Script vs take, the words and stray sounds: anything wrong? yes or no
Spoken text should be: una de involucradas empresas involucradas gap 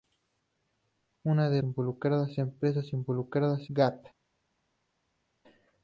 no